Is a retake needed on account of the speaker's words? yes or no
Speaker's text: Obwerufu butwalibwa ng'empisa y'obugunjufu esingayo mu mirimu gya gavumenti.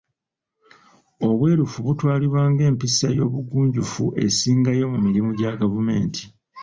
no